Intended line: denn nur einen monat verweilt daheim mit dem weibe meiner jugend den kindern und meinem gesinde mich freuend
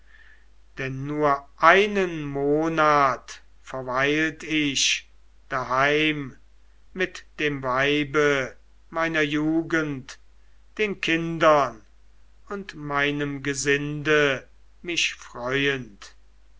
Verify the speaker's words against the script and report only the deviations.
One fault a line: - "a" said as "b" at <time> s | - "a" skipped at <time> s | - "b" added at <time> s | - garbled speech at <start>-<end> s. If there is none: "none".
- "ich" added at 4.4 s